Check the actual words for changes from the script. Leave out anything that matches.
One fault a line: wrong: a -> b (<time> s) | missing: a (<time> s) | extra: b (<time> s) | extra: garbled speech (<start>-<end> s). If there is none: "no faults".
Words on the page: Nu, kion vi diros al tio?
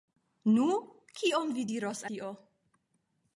missing: al (2.0 s)